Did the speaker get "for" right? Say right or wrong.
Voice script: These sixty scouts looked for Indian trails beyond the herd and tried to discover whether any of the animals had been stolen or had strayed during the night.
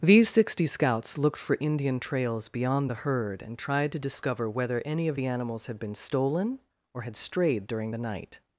right